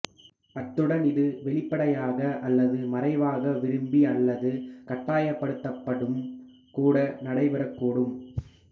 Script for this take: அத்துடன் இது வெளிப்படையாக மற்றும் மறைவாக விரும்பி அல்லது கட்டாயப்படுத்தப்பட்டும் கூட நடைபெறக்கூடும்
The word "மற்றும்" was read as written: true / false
false